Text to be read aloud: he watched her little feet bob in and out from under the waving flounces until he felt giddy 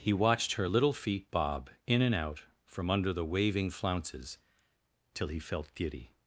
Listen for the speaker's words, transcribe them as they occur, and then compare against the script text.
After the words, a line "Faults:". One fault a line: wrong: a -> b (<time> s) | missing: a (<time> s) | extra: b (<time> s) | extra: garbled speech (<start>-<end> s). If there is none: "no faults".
he watched her little feet bob in and out from under the waving flounces till he felt giddy
Faults:
wrong: until -> till (5.2 s)